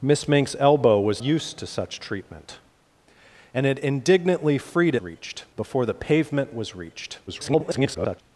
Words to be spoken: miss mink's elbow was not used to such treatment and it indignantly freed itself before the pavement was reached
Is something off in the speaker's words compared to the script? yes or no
yes